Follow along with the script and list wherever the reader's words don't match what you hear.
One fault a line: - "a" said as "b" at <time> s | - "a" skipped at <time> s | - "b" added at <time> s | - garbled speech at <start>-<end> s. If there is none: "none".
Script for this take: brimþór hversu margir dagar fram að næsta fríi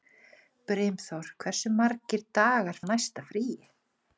- "fram" skipped at 2.8 s